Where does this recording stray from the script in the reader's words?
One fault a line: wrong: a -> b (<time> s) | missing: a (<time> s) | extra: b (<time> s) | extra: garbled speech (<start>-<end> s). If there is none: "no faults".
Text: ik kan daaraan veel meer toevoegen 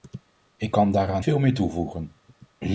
no faults